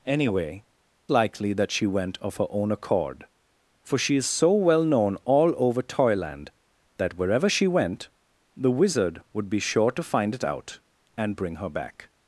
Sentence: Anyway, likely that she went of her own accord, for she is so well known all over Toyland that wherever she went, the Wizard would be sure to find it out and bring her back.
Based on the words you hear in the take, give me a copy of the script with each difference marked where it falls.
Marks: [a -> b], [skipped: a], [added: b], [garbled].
Anyway, likely that she went of her own accord, for she is so well known all over Toyland that wherever she went, the Wizard would be sure to find it out and bring her back.